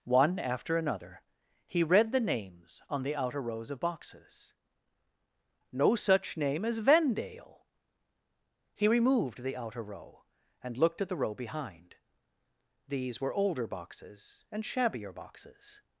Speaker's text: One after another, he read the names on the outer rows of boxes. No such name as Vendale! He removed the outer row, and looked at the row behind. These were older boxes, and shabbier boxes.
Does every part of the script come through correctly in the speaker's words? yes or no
yes